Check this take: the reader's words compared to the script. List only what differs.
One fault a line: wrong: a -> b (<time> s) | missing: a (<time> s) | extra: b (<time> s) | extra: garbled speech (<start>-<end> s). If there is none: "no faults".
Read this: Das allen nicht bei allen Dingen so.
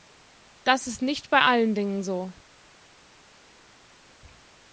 wrong: allen -> ist (0.9 s)